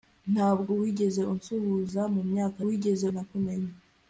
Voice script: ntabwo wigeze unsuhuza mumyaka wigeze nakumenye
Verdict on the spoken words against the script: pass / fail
pass